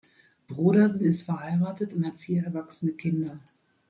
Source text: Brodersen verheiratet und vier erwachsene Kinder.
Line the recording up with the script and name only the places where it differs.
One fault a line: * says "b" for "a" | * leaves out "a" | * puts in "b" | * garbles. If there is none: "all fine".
* puts in "ist"
* puts in "hat"